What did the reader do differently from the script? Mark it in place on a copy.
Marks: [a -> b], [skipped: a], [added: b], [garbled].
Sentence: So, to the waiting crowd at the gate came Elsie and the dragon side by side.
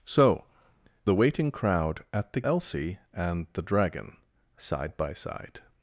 So, [skipped: to] the waiting crowd at the [skipped: gate came] Elsie and the dragon side by side.